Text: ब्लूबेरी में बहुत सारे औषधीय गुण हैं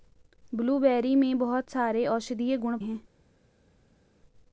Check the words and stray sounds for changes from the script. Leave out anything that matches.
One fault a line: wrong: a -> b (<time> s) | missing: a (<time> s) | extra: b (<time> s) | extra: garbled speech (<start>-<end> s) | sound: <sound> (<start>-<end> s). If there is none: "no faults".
no faults